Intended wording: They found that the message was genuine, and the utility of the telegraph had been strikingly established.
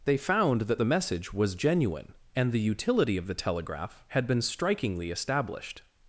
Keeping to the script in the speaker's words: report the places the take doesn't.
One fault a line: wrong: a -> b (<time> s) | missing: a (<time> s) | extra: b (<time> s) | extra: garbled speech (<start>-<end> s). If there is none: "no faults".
no faults